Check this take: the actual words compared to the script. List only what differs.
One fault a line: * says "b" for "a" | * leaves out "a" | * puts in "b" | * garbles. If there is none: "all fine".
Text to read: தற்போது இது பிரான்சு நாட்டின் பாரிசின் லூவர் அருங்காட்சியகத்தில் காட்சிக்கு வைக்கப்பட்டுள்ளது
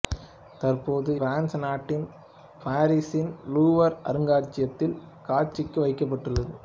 * leaves out "இது"